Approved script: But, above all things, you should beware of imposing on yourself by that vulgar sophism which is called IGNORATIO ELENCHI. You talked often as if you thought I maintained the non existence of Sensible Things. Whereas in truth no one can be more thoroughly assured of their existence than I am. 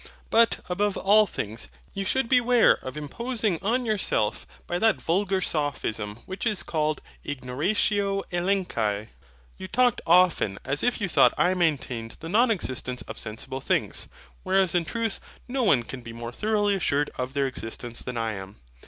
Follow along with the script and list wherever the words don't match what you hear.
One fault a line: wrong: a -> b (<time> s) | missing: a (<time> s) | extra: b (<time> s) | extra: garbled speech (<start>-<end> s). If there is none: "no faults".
no faults